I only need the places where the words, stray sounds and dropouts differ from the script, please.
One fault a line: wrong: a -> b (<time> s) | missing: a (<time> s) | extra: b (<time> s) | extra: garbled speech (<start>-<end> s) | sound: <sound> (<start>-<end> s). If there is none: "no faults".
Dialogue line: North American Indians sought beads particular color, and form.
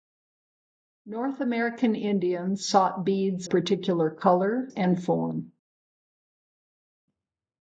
no faults